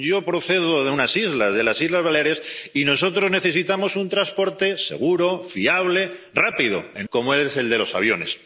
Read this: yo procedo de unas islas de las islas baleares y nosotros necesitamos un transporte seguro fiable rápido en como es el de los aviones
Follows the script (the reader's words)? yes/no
yes